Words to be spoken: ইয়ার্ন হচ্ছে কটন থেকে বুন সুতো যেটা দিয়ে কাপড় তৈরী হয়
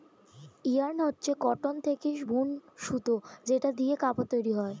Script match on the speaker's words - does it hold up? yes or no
yes